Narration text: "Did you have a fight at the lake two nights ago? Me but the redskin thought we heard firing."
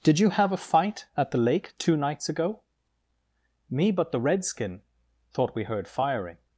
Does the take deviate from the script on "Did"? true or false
false